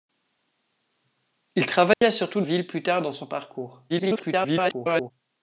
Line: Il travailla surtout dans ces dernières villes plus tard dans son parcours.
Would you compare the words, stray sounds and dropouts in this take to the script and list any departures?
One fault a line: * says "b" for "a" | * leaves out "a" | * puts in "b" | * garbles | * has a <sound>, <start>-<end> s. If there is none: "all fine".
* has a dropout, 1.9-2.0 s
* leaves out "dans ces dernières"
* garbles